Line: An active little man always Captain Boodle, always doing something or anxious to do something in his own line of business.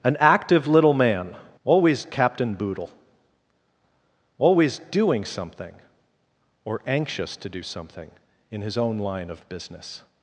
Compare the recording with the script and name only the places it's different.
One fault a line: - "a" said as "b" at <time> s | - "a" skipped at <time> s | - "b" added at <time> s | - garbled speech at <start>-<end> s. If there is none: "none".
none